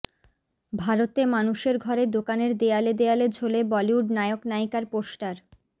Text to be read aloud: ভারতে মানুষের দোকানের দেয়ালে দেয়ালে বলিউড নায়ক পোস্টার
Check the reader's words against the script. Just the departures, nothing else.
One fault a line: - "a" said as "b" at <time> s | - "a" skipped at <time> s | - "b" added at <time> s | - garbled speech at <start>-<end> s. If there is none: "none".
- "ঘরে" added at 1.8 s
- "ঝোলে" added at 3.3 s
- "নায়িকার" added at 4.5 s